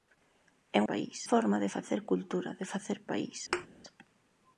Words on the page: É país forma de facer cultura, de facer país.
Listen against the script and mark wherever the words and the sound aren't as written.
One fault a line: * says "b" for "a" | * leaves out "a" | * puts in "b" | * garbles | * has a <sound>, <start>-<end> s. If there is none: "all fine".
* has a thud, 3.5-3.7 s